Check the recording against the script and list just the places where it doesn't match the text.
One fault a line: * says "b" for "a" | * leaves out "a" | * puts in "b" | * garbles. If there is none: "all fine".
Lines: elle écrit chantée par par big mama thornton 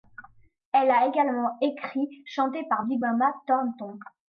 * puts in "a également"
* leaves out "par"